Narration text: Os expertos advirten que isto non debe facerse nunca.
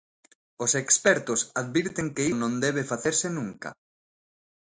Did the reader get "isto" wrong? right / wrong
wrong